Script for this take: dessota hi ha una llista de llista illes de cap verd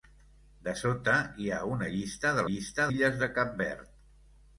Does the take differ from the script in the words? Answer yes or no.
no